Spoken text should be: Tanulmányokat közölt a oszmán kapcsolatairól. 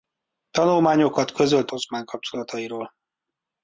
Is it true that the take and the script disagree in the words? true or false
false